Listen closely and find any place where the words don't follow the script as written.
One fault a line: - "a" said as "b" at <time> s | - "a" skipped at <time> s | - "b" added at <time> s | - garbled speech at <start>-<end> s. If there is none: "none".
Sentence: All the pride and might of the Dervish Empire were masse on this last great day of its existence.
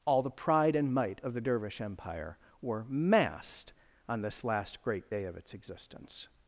- "masse" said as "massed" at 2.9 s